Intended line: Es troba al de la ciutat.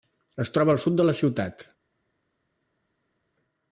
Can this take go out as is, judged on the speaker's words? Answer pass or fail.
fail